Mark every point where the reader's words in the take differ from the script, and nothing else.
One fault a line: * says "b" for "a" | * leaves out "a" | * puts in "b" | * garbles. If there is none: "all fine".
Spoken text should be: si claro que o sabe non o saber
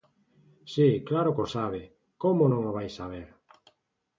* puts in "como"
* puts in "vai"